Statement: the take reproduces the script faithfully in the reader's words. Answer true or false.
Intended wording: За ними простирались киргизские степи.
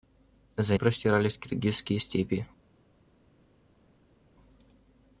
false